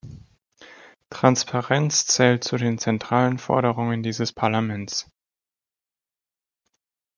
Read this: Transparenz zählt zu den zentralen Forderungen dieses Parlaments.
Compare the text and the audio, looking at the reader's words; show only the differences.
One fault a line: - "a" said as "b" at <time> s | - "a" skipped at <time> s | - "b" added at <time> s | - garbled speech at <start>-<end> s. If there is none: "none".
none